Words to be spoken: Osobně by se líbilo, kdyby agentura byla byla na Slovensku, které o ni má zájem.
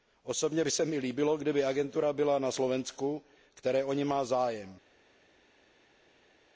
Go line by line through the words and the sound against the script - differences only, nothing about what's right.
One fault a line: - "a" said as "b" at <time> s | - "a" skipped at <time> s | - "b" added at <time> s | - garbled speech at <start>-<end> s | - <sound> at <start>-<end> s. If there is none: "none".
- "mi" added at 0.8 s
- "byla" skipped at 2.4 s